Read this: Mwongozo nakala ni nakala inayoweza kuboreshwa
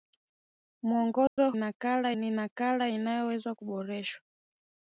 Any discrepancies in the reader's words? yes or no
no